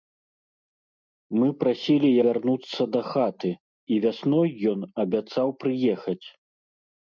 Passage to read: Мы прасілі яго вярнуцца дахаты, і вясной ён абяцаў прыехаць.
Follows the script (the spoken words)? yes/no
no